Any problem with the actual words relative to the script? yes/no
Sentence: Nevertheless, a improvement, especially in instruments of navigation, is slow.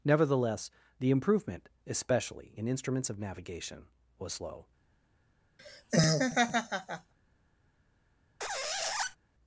yes